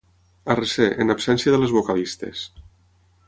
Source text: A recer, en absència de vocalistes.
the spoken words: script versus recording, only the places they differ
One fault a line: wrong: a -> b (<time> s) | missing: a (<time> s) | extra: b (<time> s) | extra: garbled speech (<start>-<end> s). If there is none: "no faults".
extra: les (1.6 s)